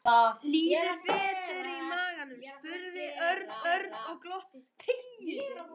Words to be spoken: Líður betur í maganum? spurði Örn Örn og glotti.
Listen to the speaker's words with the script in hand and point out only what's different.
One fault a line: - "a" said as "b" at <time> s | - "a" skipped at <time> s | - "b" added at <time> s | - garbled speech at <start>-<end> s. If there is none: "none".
none